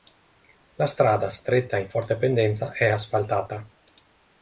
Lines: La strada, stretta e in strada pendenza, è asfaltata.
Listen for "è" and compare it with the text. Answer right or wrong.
right